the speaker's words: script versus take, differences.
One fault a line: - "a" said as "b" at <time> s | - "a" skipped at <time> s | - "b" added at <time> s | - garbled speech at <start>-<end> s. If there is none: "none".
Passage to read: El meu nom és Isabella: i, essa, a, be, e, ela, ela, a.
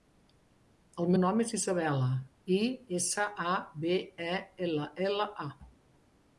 - "meu" skipped at 1.1 s